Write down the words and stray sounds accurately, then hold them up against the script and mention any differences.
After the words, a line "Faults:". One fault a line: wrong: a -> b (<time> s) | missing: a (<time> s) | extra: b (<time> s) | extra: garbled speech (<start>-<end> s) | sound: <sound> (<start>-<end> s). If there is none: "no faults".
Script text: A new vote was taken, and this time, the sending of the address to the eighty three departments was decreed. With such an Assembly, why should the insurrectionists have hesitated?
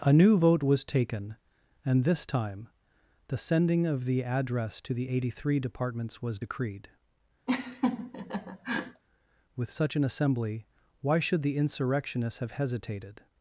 A new vote was taken, and this time, the sending of the address to the eighty three departments was decreed. With such an Assembly, why should the insurrectionists have hesitated?
Faults:
sound: laugh (7.5-9.0 s)